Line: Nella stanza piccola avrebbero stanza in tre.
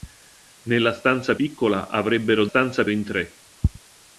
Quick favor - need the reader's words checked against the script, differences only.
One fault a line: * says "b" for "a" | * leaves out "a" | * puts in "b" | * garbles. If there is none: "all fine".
all fine